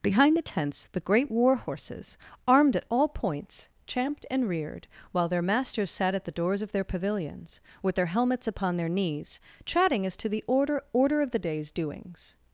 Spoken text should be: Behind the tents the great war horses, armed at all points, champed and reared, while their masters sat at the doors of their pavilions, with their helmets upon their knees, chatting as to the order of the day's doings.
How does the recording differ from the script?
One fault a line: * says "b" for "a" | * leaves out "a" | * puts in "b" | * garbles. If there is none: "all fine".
* puts in "order"